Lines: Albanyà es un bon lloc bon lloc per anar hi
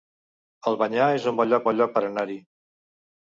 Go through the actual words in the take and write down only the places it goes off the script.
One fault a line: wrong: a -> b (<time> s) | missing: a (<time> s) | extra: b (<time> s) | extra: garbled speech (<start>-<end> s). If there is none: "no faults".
no faults